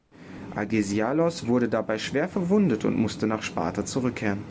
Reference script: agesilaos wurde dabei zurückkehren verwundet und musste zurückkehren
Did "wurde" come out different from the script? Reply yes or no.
no